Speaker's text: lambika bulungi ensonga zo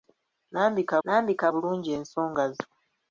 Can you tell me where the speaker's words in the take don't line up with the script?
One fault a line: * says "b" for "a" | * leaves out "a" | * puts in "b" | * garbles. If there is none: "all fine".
* puts in "lambika"